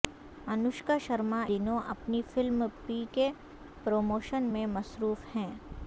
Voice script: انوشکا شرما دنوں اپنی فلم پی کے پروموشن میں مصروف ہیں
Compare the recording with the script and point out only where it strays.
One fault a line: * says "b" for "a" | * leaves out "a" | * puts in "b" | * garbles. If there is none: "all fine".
all fine